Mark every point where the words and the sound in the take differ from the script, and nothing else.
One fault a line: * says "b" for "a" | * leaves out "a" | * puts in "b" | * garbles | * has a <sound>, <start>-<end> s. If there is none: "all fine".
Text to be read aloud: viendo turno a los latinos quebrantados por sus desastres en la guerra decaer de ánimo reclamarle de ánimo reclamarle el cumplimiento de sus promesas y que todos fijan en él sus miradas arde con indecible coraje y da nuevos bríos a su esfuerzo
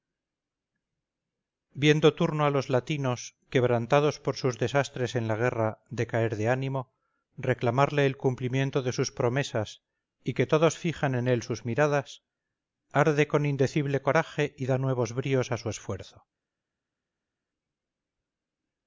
* leaves out "de ánimo reclamarle"